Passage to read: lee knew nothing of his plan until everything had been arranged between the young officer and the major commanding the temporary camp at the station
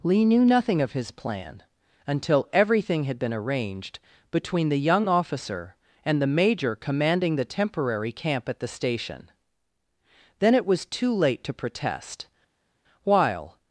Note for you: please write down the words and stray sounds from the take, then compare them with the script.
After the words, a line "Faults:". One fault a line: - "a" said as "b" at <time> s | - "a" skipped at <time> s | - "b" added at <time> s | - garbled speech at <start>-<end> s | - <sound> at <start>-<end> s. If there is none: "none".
lee knew nothing of his plan until everything had been arranged between the young officer and the major commanding the temporary camp at the station then it was too late to protest while
Faults:
- "then it was too late to protest while" added at 10.4 s